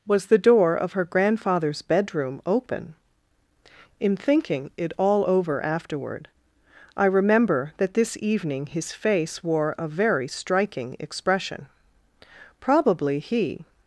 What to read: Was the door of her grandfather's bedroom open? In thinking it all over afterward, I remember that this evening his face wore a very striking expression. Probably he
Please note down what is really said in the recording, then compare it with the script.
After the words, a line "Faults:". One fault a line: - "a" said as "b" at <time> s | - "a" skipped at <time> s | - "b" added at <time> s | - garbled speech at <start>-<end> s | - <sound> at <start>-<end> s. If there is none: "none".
Was the door of her grandfather's bedroom open? In thinking it all over afterward, I remember that this evening his face wore a very striking expression. Probably he
Faults:
none